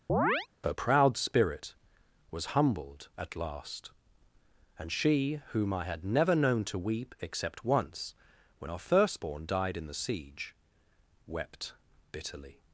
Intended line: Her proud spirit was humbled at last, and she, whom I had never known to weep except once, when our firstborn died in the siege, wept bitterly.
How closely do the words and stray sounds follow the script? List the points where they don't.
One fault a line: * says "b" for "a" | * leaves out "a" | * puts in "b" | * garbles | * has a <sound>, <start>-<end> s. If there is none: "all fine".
* has a chirp, 0.1-0.5 s